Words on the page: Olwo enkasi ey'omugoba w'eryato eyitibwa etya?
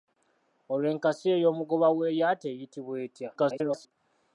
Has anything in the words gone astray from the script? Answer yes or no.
yes